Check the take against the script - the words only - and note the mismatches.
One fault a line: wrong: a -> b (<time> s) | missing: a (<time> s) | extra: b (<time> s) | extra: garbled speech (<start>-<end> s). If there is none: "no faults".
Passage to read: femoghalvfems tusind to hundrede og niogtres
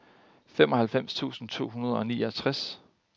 no faults